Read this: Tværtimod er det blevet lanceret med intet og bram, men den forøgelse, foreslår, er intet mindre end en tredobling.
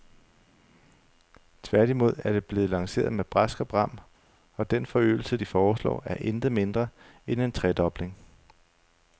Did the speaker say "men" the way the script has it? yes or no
no